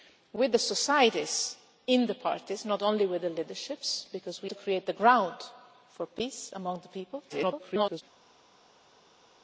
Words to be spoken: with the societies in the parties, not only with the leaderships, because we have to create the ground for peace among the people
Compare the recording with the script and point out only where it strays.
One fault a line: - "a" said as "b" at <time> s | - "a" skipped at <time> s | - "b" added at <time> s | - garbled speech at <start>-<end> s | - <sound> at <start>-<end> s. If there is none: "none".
- "have" skipped at 4.5 s
- garbled speech at 7.3-8.0 s